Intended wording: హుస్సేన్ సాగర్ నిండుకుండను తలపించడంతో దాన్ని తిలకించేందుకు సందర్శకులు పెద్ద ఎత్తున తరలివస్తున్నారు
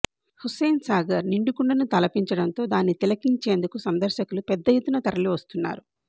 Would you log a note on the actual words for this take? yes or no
no